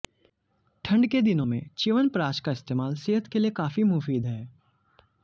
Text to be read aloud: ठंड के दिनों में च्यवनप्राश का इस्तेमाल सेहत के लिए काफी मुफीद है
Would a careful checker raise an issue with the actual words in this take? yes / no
no